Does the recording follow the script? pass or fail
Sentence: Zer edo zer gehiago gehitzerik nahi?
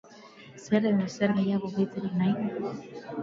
pass